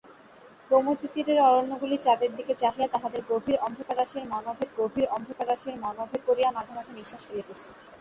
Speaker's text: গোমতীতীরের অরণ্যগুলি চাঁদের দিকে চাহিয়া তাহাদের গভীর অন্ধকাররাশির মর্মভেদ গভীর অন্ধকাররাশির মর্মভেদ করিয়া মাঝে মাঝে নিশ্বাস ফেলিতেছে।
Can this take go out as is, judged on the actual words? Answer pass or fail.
pass